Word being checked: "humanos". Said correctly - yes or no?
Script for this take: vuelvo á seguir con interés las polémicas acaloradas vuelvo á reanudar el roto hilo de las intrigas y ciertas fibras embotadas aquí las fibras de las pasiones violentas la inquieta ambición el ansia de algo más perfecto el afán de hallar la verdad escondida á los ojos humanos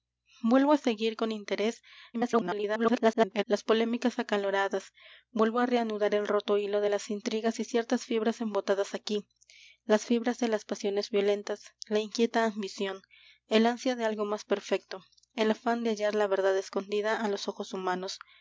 yes